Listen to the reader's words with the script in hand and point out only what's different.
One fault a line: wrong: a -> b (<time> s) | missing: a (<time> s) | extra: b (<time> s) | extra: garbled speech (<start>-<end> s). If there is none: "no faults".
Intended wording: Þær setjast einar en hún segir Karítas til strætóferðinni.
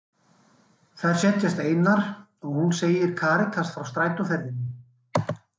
wrong: en -> og (2.1 s)
wrong: til -> frá (3.8 s)